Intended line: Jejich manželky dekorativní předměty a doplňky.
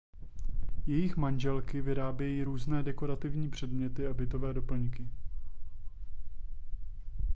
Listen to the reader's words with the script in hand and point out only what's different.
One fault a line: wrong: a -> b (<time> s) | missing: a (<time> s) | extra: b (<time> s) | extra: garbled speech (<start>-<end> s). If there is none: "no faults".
extra: vyrábějí různé (1.8 s)
extra: bytové (4.1 s)